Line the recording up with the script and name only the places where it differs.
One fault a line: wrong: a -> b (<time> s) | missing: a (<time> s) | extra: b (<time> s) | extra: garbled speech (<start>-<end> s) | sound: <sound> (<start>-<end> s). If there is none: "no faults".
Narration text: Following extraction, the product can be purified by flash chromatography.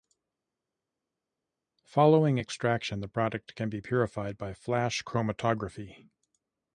no faults